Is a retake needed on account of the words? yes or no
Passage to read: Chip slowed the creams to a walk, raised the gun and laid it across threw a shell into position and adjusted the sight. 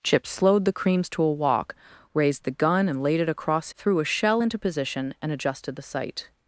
no